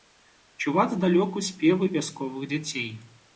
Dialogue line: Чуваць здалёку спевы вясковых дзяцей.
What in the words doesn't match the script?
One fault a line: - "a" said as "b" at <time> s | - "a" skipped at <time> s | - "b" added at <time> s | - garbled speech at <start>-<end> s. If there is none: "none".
none